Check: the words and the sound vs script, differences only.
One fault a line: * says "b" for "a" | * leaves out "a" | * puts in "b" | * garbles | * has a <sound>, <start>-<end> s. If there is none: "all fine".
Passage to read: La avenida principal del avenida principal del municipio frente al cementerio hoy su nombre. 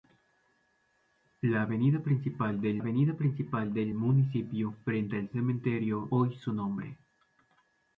all fine